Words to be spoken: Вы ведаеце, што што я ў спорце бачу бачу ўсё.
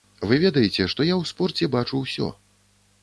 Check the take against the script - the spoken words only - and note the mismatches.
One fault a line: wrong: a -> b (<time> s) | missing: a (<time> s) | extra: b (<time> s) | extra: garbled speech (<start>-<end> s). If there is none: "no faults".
missing: што (1.1 s)
missing: бачу (2.0 s)